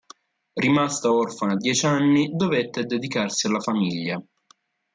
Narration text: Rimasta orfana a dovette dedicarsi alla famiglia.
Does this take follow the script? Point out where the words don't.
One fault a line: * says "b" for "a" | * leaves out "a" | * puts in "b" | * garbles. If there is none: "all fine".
* puts in "dieci anni"